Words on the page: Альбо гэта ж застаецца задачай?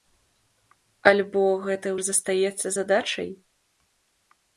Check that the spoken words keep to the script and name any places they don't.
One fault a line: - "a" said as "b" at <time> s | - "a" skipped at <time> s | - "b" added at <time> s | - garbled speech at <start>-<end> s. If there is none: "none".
none